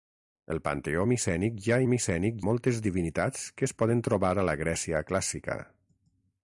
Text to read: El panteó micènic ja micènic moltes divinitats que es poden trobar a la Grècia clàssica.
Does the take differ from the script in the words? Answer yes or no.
no